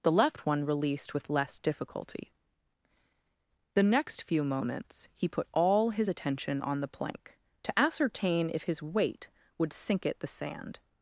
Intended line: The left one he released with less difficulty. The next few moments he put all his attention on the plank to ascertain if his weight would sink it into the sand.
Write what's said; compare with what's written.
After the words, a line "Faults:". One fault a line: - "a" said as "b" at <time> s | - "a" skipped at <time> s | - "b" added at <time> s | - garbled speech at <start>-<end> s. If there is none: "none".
The left one released with less difficulty. The next few moments he put all his attention on the plank to ascertain if his weight would sink it the sand.
Faults:
- "he" skipped at 0.7 s
- "into" skipped at 10.2 s